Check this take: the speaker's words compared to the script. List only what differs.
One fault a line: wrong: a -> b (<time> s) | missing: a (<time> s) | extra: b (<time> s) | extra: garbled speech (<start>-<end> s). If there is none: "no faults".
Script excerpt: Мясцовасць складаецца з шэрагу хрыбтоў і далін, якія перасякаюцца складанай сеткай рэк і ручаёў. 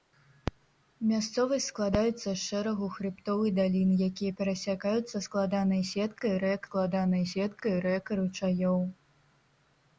extra: складанай сеткай рэк (6.7 s)